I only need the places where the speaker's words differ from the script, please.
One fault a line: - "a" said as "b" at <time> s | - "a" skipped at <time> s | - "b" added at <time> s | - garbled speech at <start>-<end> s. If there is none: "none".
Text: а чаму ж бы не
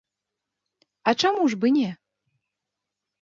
none